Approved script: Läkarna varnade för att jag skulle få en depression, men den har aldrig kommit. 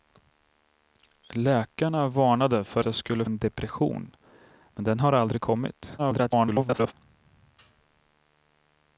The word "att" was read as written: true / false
false